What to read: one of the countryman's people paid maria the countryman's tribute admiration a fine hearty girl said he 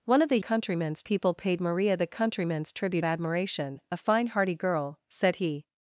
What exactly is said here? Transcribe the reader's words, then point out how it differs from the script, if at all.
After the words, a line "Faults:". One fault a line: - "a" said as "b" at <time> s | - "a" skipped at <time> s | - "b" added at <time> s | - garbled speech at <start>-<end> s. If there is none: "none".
one of the countryman's people paid maria the countryman's tribute admiration a fine hearty girl said he
Faults:
none